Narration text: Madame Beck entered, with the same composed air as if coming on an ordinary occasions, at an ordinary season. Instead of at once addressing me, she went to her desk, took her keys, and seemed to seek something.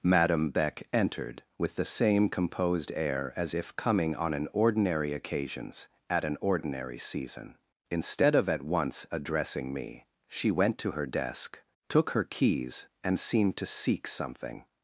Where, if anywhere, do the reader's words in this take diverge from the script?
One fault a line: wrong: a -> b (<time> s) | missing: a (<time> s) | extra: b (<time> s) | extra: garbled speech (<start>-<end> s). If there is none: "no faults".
no faults